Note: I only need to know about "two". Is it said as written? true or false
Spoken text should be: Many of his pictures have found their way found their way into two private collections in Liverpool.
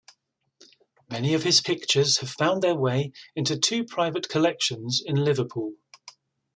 true